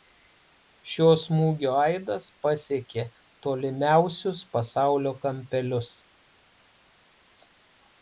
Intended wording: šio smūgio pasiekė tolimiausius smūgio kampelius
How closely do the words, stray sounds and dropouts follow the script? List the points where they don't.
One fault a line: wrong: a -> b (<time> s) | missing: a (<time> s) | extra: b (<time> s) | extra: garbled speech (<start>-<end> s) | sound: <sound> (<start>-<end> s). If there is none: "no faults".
extra: aidas (1.8 s)
wrong: smūgio -> pasaulio (4.6 s)